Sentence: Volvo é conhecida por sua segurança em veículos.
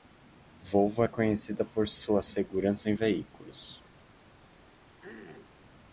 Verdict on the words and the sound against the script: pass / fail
fail